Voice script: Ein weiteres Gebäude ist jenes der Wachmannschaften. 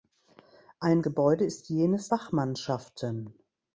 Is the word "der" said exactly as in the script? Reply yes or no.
no